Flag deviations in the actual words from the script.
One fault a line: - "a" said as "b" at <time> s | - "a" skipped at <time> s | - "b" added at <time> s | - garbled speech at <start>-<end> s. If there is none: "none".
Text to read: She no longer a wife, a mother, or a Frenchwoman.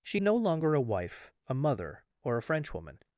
none